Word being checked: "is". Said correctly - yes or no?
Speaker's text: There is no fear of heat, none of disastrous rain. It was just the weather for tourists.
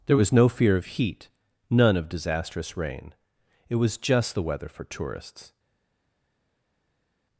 no